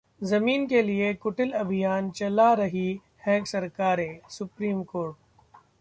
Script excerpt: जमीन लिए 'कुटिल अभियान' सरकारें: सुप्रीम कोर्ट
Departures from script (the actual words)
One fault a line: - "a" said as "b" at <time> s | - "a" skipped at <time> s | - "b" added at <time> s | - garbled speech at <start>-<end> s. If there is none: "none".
- "के" added at 0.6 s
- "चला रही हैं" added at 2.1 s